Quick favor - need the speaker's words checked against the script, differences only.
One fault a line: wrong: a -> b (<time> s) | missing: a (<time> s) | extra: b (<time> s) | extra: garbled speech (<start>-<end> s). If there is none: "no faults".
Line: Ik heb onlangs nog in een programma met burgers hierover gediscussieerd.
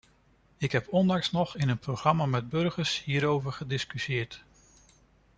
no faults